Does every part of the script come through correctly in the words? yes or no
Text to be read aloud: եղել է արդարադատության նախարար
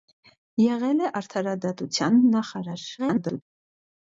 no